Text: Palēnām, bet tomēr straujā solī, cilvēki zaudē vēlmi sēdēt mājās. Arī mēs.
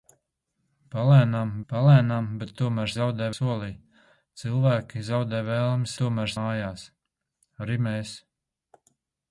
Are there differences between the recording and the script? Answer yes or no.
yes